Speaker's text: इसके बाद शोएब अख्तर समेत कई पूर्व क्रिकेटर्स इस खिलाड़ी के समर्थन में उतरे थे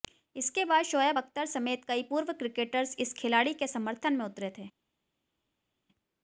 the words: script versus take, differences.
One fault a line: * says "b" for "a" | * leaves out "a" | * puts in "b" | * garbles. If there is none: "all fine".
all fine